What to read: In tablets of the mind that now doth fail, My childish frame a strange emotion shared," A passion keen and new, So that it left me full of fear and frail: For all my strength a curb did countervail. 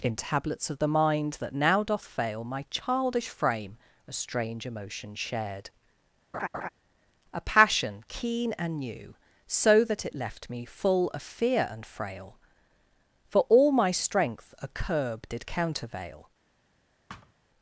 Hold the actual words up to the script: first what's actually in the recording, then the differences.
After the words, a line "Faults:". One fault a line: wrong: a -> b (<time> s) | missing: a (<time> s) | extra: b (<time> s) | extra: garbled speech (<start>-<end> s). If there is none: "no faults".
In tablets of the mind that now doth fail, My childish frame a strange emotion shared," A passion keen and new, So that it left me full of fear and frail: For all my strength a curb did countervail.
Faults:
no faults